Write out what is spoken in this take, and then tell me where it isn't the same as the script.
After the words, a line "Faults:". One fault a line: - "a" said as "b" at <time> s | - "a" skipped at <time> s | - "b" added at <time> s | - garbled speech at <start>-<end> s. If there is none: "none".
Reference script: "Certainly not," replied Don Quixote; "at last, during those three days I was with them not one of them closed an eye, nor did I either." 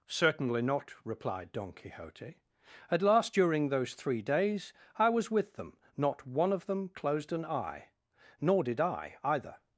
"Certainly not," replied Don Quixote; "at last, during those three days I was with them not one of them closed an eye, nor did I either."
Faults:
none